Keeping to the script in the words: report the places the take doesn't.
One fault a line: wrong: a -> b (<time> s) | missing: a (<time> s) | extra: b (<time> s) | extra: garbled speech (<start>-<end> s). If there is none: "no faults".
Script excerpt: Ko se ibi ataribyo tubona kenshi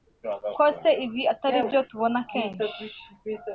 no faults